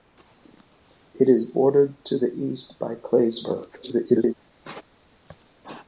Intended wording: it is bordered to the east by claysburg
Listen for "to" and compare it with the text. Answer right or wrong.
right